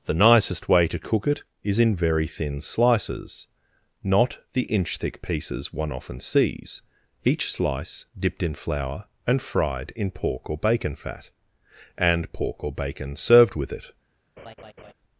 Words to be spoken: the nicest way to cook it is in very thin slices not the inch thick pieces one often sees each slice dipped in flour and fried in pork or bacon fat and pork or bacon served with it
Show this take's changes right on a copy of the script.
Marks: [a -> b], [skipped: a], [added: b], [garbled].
the nicest way to cook it is in very thin slices not the inch thick pieces one often sees each slice dipped in flour and fried in pork or bacon fat and pork or bacon served with it